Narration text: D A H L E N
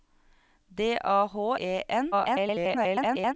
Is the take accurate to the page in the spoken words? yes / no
no